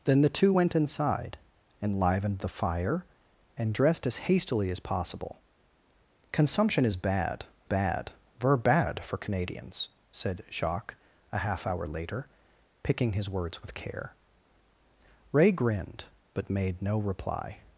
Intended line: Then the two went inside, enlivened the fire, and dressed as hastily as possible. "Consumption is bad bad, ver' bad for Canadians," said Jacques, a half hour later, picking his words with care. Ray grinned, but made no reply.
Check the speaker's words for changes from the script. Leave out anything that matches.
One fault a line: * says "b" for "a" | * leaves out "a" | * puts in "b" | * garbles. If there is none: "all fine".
all fine